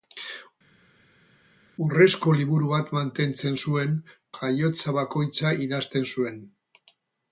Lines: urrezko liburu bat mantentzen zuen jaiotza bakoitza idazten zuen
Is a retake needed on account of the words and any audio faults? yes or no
no